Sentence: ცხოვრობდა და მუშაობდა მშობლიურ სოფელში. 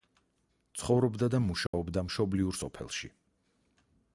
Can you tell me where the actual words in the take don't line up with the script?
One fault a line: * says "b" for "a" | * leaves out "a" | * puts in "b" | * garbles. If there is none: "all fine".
all fine